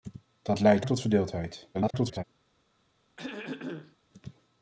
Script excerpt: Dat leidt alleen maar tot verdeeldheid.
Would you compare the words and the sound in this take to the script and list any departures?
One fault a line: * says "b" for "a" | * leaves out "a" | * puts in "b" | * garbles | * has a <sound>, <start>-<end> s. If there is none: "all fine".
* leaves out "alleen maar"
* garbles
* has a throat clearing, 3.2-4.0 s